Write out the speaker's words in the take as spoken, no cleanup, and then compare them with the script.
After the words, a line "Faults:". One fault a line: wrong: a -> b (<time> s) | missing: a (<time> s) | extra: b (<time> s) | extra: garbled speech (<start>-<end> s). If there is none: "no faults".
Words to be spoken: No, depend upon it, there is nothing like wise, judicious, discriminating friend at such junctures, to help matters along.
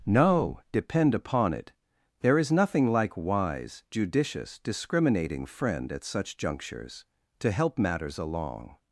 No, depend upon it, there is nothing like wise, judicious, discriminating friend at such junctures, to help matters along.
Faults:
no faults